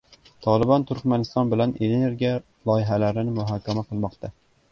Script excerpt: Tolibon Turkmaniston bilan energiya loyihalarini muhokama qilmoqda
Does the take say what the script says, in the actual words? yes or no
yes